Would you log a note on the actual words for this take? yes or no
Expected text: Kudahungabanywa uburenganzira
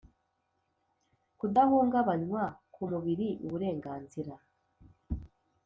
yes